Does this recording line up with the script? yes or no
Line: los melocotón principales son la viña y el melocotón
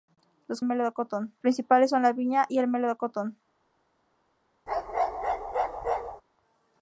yes